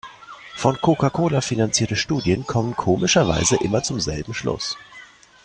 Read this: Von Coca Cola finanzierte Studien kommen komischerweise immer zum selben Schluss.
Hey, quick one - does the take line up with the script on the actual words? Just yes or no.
yes